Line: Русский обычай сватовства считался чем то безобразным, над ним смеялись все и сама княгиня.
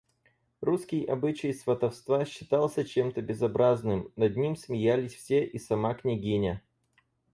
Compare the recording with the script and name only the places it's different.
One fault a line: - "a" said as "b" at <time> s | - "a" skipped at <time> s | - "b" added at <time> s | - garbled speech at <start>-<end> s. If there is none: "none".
none